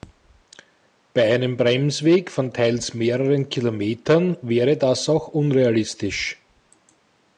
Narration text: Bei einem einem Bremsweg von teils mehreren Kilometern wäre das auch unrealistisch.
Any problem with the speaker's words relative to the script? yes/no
yes